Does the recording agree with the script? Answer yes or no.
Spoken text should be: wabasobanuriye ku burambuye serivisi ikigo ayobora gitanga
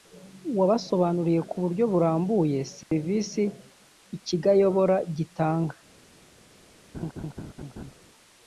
no